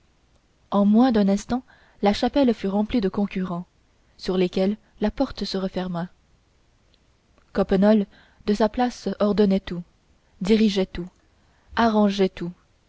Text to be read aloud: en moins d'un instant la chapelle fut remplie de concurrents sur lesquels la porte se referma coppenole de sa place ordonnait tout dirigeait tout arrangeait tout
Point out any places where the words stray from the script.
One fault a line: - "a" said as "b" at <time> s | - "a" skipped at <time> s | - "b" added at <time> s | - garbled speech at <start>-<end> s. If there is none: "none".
none